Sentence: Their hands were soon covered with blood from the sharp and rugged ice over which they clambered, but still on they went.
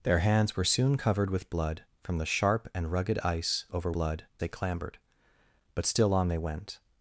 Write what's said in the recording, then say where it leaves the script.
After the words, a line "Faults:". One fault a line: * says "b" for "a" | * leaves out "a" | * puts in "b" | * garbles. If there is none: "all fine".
Their hands were soon covered with blood from the sharp and rugged ice over blood they clambered, but still on they went.
Faults:
* says "blood" for "which"